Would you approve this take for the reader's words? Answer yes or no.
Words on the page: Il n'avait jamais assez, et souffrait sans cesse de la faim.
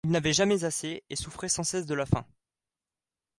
yes